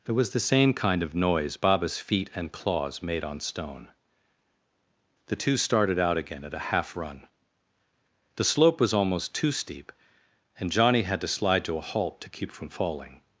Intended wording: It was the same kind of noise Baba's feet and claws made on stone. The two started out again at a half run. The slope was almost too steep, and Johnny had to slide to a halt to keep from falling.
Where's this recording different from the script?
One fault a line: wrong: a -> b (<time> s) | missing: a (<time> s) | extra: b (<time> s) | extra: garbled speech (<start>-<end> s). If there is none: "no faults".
no faults